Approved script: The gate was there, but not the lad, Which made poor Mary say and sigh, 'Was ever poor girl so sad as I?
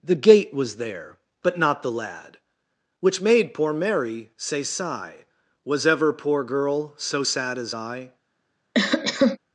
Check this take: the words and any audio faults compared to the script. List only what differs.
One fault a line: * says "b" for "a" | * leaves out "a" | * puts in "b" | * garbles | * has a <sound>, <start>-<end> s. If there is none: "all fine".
* leaves out "and"
* has a cough, 8.7-9.4 s